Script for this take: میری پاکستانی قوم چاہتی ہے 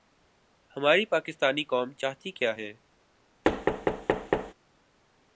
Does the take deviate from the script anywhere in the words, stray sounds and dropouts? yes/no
yes